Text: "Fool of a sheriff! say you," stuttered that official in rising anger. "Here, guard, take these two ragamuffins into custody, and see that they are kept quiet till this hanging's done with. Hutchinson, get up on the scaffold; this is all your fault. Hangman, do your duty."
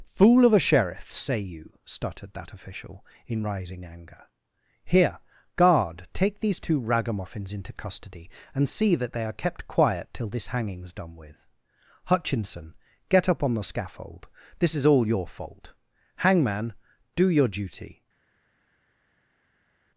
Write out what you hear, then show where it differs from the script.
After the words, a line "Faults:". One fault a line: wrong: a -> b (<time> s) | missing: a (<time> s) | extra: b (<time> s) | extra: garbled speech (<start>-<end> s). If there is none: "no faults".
"Fool of a sheriff! say you," stuttered that official in rising anger. "Here, guard, take these two ragamuffins into custody, and see that they are kept quiet till this hanging's done with. Hutchinson, get up on the scaffold; this is all your fault. Hangman, do your duty."
Faults:
no faults